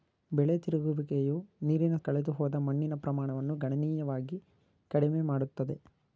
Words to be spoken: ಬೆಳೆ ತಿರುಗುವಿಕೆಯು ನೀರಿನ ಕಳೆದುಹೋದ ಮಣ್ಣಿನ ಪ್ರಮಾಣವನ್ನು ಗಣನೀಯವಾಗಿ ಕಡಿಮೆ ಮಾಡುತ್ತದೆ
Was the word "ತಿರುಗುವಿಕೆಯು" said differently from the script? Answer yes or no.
no